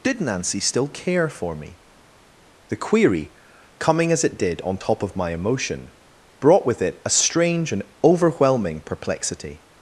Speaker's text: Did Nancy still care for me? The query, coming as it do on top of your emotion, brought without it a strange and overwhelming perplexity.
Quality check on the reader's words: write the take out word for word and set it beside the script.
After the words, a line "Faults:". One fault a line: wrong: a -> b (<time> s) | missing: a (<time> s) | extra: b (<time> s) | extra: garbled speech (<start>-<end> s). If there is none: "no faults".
Did Nancy still care for me? The query, coming as it did on top of my emotion, brought with it a strange and overwhelming perplexity.
Faults:
wrong: do -> did (4.4 s)
wrong: your -> my (5.2 s)
wrong: without -> with (6.7 s)